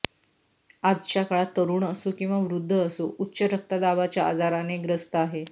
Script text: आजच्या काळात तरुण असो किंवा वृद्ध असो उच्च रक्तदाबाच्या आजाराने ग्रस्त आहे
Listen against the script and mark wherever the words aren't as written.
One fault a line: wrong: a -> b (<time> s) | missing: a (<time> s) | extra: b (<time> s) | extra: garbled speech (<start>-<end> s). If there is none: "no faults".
no faults